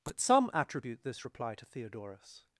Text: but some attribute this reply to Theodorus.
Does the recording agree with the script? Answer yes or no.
yes